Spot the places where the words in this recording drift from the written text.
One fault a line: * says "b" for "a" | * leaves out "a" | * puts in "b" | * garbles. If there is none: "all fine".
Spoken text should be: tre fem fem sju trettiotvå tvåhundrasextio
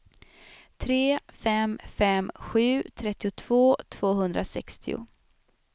all fine